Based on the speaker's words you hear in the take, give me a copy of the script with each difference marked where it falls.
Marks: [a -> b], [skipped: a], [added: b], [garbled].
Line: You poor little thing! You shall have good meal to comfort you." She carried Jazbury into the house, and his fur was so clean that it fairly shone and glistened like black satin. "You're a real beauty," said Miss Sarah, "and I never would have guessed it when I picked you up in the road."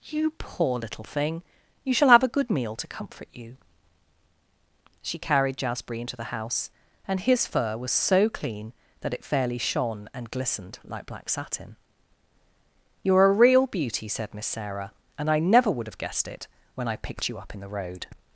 You poor little thing! You shall have [added: a] good meal to comfort you." She carried Jazbury into the house, and his fur was so clean that it fairly shone and glistened like black satin. "You're a real beauty," said Miss Sarah, "and I never would have guessed it when I picked you up in the road."